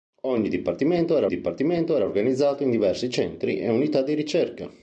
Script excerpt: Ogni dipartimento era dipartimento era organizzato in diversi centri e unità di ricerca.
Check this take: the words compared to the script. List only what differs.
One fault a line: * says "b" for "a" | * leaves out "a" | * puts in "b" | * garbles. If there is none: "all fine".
all fine